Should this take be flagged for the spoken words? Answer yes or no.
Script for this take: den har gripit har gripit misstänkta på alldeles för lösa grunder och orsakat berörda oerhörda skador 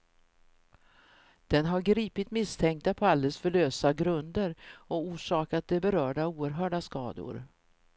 yes